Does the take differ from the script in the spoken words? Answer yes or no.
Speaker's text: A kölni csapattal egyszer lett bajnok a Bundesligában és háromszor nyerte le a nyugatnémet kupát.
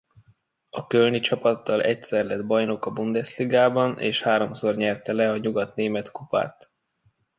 no